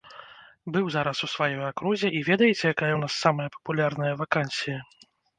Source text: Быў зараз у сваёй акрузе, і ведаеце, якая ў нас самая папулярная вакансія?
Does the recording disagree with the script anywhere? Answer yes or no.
no